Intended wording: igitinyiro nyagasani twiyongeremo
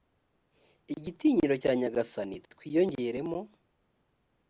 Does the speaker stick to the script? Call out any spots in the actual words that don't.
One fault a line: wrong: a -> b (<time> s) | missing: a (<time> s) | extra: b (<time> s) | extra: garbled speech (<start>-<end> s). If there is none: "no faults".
extra: cya (1.6 s)